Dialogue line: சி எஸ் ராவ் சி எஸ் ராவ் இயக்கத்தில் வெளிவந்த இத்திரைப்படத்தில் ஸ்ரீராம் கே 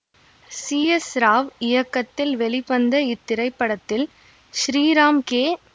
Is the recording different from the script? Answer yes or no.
yes